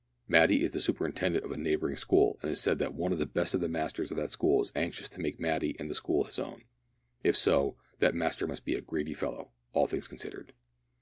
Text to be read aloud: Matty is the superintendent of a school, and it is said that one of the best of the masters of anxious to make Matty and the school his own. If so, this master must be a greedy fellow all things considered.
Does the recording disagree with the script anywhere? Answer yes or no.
yes